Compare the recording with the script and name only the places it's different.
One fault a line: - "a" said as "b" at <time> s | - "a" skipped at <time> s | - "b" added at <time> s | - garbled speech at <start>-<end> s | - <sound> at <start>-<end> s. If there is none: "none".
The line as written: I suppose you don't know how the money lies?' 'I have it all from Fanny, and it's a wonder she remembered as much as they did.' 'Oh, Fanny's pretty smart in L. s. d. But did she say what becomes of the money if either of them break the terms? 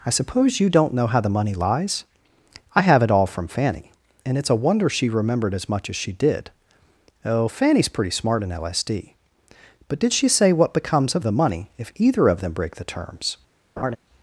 - "they" said as "she" at 6.0 s
- laugh at 13.8-14.0 s